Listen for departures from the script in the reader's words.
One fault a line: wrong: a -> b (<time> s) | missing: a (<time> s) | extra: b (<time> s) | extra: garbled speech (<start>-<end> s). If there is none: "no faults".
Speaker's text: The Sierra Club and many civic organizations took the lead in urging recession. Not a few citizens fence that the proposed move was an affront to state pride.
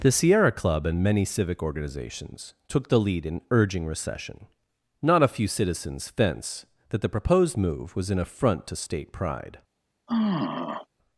no faults